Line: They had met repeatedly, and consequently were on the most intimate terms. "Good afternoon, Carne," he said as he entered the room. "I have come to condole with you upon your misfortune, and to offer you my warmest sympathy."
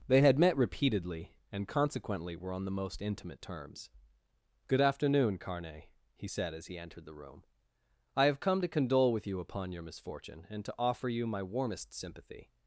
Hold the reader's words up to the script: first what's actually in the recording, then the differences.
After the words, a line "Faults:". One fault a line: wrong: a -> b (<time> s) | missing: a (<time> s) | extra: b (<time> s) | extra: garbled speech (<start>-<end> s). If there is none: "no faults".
They had met repeatedly, and consequently were on the most intimate terms. "Good afternoon, Carne," he said as he entered the room. "I have come to condole with you upon your misfortune, and to offer you my warmest sympathy."
Faults:
no faults